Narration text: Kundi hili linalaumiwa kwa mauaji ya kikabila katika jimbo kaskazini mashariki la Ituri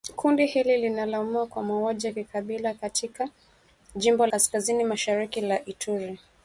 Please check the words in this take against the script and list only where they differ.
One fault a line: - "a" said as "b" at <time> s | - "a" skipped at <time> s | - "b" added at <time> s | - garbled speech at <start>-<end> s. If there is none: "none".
none